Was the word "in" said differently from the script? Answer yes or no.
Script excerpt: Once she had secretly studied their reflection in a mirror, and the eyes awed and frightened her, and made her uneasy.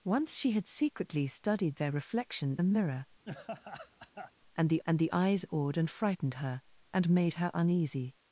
yes